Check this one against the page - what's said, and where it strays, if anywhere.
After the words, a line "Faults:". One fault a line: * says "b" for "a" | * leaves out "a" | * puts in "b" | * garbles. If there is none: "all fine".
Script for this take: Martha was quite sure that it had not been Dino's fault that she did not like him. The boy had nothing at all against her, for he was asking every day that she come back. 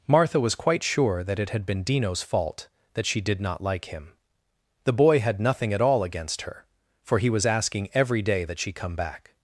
Martha was quite sure that it had been Dino's fault that she did not like him. The boy had nothing at all against her, for he was asking every day that she come back.
Faults:
* leaves out "not"